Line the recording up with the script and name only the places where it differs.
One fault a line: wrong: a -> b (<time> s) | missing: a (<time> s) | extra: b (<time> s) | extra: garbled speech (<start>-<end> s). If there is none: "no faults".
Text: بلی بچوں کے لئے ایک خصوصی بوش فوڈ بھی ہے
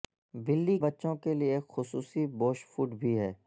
no faults